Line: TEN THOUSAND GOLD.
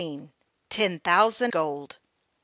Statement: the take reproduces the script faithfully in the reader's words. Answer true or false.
true